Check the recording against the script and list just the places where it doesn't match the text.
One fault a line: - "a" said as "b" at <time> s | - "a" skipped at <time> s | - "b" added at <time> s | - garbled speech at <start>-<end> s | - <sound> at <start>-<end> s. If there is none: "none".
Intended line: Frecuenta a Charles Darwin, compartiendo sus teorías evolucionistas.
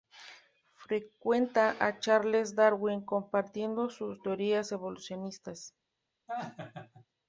- laugh at 6.3-7.1 s